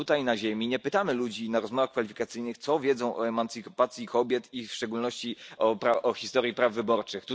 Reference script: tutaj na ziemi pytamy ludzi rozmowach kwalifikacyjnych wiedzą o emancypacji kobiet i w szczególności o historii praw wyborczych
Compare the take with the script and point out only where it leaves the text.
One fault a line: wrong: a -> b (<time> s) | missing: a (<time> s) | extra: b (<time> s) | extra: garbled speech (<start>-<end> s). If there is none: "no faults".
extra: nie (0.7 s)
extra: na (1.5 s)
extra: co (2.6 s)